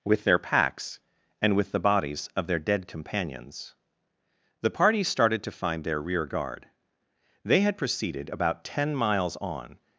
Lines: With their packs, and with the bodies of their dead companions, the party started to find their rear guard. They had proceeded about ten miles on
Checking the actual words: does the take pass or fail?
pass